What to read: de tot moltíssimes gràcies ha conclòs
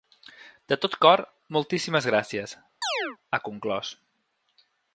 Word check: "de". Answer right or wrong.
right